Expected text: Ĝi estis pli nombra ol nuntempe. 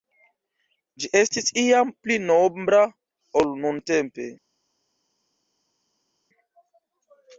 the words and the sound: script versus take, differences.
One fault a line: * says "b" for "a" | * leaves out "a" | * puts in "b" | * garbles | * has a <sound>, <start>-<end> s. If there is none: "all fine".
* puts in "iam"